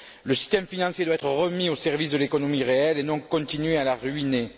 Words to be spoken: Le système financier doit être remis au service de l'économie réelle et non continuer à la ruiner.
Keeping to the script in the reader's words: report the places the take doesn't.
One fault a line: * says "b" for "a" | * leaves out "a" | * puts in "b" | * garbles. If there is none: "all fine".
all fine